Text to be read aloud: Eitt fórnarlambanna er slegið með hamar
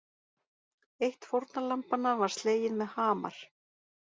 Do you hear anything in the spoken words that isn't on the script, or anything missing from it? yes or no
yes